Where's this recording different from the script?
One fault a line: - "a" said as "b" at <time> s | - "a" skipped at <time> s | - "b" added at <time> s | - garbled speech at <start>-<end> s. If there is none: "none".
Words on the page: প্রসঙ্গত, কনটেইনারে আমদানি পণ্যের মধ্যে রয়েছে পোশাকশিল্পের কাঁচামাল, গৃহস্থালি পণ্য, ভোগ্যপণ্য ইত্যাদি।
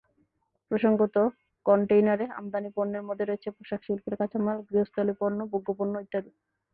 none